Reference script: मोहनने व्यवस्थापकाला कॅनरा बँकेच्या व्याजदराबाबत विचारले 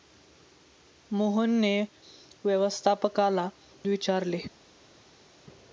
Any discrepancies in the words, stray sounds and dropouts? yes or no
yes